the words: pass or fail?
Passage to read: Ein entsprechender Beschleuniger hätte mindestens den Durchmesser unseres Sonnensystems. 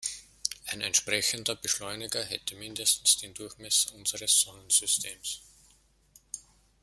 pass